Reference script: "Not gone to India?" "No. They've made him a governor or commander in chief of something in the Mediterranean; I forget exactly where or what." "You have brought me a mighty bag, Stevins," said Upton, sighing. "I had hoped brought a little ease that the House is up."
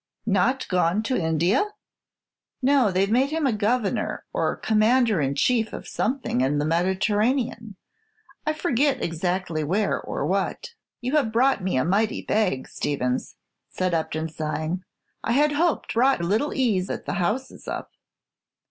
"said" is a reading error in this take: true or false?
false